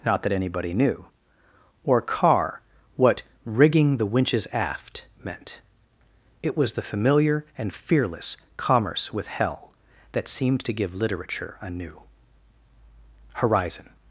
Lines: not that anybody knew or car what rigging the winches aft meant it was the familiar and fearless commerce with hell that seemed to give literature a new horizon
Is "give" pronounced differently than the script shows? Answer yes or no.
no